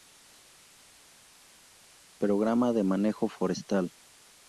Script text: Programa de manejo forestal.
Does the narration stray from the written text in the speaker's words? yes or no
no